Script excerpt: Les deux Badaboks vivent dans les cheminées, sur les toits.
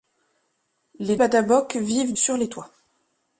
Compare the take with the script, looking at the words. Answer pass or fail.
fail